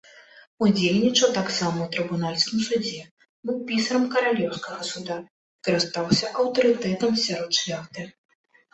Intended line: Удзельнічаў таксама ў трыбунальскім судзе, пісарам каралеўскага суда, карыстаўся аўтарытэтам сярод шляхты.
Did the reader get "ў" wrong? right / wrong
right